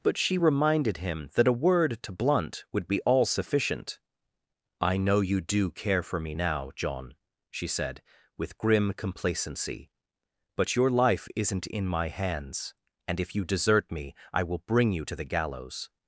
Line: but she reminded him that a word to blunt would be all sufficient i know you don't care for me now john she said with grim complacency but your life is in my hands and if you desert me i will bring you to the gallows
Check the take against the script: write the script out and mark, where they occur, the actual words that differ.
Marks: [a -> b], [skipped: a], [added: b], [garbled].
but she reminded him that a word to blunt would be all sufficient i know you [don't -> do] care for me now john she said with grim complacency but your life [is -> isn't] in my hands and if you desert me i will bring you to the gallows